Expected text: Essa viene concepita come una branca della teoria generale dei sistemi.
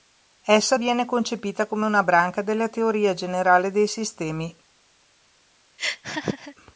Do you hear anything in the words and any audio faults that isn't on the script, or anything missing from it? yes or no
yes